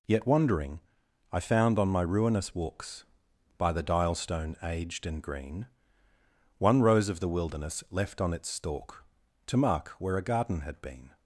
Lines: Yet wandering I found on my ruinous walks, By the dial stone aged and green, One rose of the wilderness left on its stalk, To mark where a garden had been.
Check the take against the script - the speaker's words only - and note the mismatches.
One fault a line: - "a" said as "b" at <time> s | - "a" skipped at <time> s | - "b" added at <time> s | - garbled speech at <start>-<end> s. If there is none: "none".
none